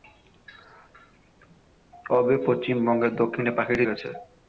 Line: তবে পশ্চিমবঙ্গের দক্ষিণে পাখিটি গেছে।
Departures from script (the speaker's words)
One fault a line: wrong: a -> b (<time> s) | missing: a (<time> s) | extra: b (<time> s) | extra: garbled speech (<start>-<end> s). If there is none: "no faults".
no faults